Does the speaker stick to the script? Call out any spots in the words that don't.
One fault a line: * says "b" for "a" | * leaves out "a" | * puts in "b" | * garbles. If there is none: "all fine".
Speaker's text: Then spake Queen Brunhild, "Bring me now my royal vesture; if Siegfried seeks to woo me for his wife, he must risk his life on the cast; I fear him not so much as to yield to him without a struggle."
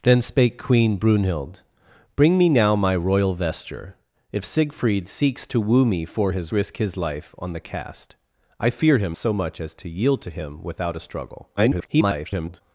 * leaves out "wife he must"
* leaves out "not"
* garbles